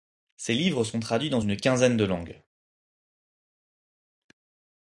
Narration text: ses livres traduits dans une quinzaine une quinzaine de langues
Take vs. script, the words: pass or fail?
fail